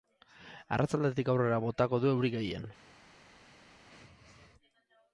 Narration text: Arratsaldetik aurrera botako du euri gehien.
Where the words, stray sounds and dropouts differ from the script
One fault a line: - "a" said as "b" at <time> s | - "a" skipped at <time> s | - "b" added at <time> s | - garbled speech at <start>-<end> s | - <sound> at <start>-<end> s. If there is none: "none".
none